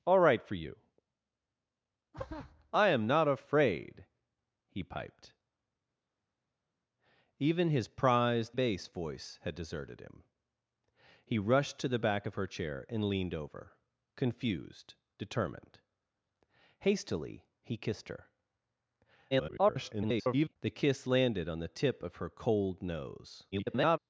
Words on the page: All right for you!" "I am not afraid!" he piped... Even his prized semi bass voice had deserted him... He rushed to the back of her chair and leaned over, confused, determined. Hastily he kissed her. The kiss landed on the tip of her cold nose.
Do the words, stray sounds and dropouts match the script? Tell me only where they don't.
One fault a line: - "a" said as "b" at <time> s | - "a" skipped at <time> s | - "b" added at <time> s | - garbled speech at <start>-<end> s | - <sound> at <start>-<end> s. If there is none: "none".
- "semi" skipped at 8.6 s
- garbled speech at 19.3-20.6 s
- garbled speech at 23.5-24.0 s